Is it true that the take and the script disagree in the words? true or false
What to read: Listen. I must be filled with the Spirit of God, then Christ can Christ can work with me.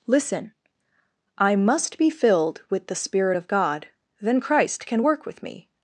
true